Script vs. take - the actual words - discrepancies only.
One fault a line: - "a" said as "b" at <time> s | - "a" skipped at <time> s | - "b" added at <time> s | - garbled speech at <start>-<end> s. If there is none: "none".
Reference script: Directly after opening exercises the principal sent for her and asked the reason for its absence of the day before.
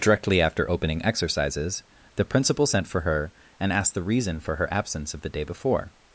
- "its" said as "her" at 4.6 s